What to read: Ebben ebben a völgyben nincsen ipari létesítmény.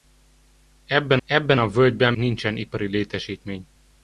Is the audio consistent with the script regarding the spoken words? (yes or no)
yes